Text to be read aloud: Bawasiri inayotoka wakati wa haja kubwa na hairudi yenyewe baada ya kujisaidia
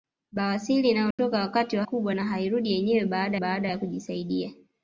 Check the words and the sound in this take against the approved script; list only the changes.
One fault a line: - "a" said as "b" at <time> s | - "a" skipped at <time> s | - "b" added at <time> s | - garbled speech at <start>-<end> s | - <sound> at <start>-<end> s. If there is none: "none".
- dropout at 1.1-1.2 s
- "haja" skipped at 1.8 s
- "baada" added at 3.3 s